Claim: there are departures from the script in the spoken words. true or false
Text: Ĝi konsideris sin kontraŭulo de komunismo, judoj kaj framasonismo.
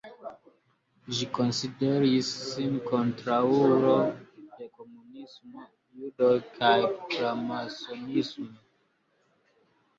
false